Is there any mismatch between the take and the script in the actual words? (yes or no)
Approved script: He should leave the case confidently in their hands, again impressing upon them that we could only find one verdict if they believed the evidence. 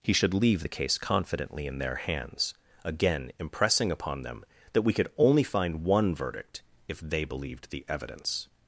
no